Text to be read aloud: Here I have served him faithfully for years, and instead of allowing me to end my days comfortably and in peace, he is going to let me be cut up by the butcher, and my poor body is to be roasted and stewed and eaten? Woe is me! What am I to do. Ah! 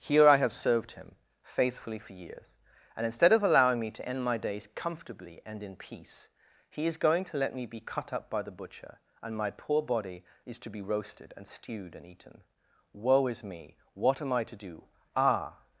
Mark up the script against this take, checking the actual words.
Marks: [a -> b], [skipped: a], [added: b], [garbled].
Here I have served him faithfully for years, and instead of allowing me to end my days comfortably and in peace, he is going to let me be cut up by the butcher, and my poor body is to be roasted and stewed and eaten? Woe is me! What am I to do. Ah!